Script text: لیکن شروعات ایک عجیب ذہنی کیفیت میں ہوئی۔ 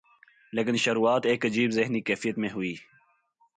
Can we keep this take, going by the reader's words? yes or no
yes